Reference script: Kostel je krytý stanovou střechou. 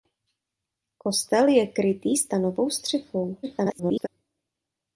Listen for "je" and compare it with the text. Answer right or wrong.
right